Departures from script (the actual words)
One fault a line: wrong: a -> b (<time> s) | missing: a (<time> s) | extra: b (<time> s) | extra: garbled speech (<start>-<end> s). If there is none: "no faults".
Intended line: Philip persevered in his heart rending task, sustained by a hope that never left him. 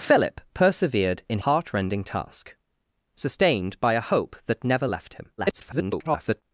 missing: his (1.4 s)
extra: garbled speech (5.4-6.4 s)